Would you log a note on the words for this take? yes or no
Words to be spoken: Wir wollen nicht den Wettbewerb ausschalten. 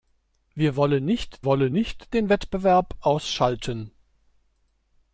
yes